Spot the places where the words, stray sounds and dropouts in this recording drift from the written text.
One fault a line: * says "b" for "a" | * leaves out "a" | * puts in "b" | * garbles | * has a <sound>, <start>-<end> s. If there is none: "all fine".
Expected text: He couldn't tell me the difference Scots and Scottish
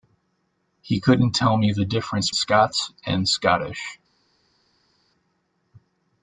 all fine